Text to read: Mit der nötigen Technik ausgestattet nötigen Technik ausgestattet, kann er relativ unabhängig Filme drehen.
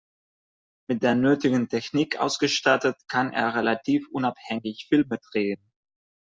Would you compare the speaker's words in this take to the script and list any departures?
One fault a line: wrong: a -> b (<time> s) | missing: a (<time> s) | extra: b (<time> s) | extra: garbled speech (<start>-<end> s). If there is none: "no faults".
missing: nötigen Technik ausgestattet (3.0 s)